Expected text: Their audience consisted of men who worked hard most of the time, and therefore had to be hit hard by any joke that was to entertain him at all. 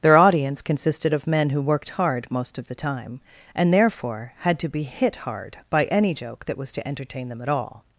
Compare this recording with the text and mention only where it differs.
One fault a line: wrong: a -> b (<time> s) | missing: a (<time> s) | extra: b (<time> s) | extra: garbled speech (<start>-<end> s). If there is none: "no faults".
wrong: him -> them (7.3 s)